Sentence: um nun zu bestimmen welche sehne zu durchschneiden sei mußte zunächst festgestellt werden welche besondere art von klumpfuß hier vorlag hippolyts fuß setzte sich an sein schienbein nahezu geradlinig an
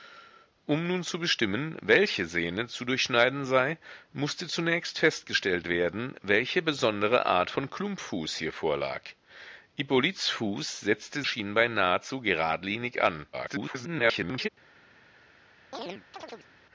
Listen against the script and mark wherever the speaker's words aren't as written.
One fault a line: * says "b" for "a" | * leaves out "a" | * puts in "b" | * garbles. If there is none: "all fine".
* leaves out "sich an sein"
* garbles